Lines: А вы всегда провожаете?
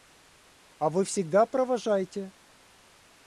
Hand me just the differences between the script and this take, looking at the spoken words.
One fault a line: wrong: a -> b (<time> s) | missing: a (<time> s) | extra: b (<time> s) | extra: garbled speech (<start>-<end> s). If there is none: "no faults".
no faults